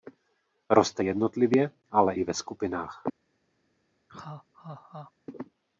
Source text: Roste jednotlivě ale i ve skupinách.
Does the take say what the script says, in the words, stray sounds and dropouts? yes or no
no